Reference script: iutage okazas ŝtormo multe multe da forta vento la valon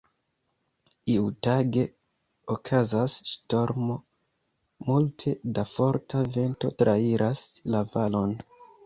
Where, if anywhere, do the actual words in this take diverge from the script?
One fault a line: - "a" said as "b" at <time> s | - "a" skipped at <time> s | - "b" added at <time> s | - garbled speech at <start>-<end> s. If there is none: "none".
- "multe" skipped at 5.3 s
- "trairas" added at 6.8 s